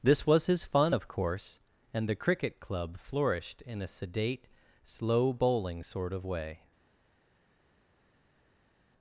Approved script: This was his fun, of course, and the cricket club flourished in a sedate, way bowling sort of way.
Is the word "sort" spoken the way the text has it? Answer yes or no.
yes